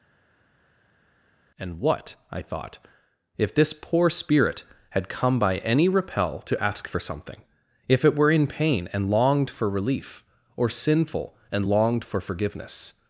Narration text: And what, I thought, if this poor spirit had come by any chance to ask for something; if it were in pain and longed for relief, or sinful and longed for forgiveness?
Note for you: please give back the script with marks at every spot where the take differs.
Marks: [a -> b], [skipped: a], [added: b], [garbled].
And what, I thought, if this poor spirit had come by any [chance -> repel] to ask for something; if it were in pain and longed for relief, or sinful and longed for forgiveness?